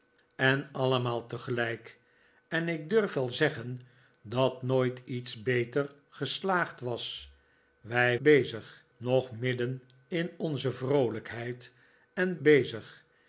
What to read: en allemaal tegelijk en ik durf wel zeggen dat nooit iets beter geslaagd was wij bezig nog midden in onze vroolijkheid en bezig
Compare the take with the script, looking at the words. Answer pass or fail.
pass